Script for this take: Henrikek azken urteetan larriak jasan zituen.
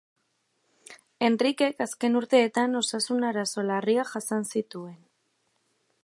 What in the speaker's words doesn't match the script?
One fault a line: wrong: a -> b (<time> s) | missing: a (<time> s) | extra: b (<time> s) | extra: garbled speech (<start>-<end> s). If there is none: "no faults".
extra: osasun arazo (2.8 s)